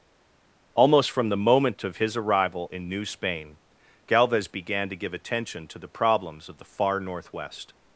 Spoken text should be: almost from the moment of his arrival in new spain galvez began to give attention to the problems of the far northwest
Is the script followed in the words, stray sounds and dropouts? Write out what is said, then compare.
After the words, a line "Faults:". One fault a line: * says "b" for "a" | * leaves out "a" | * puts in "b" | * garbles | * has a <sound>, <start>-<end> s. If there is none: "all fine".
almost from the moment of his arrival in new spain galvez began to give attention to the problems of the far northwest
Faults:
all fine